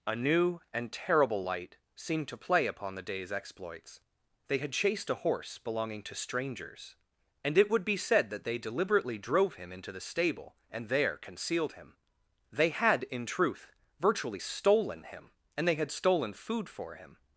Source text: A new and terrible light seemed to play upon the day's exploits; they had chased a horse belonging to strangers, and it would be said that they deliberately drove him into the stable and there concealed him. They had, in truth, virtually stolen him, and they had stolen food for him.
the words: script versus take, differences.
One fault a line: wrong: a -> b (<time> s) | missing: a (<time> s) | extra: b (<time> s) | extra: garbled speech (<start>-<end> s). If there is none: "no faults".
no faults